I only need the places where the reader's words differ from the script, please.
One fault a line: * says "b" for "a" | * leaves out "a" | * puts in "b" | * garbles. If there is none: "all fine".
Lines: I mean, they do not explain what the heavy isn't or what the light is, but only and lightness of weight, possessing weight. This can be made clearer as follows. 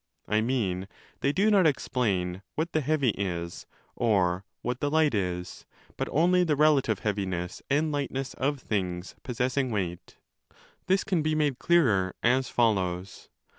* says "is" for "isn't"
* puts in "the relative heaviness"
* says "things" for "weight"